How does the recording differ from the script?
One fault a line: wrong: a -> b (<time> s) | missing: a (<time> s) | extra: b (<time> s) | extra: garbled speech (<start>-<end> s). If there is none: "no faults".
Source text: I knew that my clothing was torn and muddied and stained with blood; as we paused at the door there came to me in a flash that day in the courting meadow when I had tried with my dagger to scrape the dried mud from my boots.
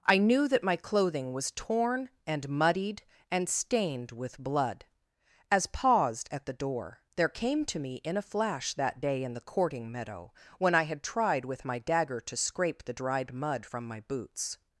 missing: we (5.7 s)